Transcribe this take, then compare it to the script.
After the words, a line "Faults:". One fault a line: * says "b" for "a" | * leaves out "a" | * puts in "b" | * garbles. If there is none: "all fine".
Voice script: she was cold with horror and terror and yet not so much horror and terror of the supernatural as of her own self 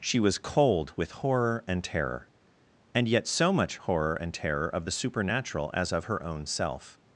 she was cold with horror and terror and yet so much horror and terror of the supernatural as of her own self
Faults:
* leaves out "not"